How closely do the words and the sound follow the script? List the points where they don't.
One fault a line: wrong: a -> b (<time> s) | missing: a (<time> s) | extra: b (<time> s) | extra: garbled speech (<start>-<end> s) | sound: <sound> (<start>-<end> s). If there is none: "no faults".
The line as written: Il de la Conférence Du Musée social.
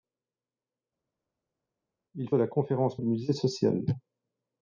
no faults